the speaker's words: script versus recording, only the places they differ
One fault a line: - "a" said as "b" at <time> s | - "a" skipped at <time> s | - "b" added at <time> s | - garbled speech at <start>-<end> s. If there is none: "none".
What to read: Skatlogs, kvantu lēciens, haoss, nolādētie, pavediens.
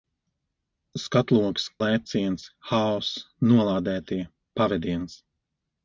- "kvantu" skipped at 1.6 s